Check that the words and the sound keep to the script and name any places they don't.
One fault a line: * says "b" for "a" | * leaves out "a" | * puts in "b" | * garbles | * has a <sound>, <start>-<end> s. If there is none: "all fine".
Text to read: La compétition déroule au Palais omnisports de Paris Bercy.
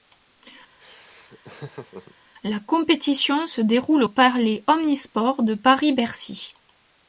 * has a laugh, 0.8-2.1 s
* puts in "se"